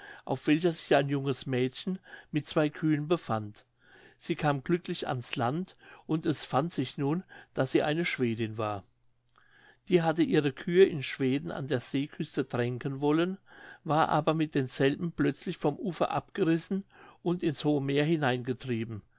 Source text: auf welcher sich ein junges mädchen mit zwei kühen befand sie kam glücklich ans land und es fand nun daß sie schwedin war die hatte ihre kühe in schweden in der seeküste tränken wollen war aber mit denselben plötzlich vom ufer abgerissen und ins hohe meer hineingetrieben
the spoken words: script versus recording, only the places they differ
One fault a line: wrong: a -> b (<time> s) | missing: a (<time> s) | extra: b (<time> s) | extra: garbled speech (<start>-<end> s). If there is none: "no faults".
extra: sich (6.7 s)
extra: eine (7.8 s)
wrong: in -> an (11.5 s)